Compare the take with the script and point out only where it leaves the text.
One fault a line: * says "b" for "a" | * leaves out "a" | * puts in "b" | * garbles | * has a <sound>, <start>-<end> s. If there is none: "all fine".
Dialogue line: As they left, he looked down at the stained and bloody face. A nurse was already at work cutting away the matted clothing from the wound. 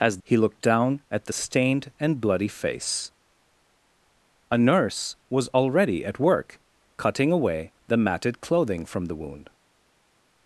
* leaves out "they left"